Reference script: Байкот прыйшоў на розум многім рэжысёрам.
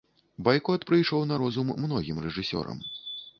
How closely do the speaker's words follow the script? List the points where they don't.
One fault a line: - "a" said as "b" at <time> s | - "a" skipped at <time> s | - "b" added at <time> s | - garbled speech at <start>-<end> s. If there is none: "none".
none